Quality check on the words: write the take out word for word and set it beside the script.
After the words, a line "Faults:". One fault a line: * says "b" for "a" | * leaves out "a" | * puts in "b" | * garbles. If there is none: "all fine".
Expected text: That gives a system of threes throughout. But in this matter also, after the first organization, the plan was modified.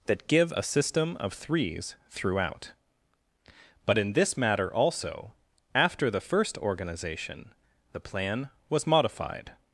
That give a system of threes throughout. But in this matter also, after the first organization, the plan was modified.
Faults:
* says "give" for "gives"